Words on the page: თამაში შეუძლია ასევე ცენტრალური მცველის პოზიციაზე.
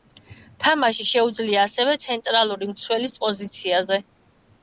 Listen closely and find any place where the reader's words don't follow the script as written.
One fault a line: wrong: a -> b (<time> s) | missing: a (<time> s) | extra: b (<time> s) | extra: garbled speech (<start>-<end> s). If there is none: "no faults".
no faults